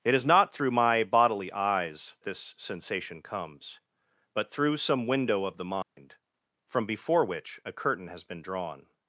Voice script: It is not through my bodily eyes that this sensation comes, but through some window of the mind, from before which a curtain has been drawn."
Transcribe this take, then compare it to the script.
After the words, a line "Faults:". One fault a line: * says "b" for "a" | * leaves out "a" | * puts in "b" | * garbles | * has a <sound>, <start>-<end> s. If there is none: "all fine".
It is not through my bodily eyes this sensation comes, but through some window of the mind, from before which a curtain has been drawn."
Faults:
* leaves out "that"
* has a dropout, 5.8-6.0 s